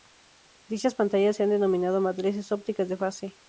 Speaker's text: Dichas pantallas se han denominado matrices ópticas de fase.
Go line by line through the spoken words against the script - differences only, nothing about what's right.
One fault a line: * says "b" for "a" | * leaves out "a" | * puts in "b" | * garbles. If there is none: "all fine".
all fine